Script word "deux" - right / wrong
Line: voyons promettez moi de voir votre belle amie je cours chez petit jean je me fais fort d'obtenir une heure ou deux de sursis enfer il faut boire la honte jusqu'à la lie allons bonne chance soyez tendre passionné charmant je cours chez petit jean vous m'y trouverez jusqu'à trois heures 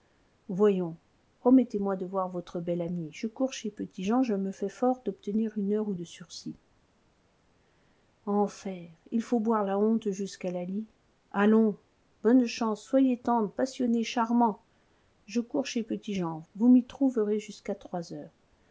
wrong